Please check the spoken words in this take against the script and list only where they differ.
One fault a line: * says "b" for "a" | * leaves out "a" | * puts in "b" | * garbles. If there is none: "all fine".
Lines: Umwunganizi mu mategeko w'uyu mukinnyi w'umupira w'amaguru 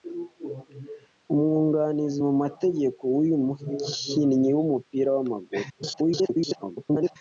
* garbles